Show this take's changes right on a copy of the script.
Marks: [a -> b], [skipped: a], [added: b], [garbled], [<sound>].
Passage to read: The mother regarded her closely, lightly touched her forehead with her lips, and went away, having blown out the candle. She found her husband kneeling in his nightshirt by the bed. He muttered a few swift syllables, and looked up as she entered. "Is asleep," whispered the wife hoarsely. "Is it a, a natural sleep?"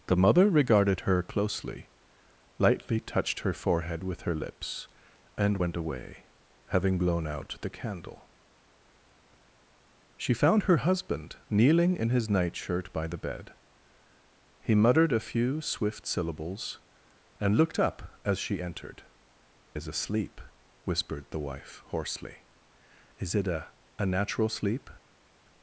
The mother regarded her closely, lightly touched her forehead with her lips, and went away, having blown out the candle. She found her husband kneeling in his nightshirt by the bed. He muttered a few swift syllables, and looked up as she entered. "Is asleep," whispered the wife hoarsely. "Is it a, a natural sleep?"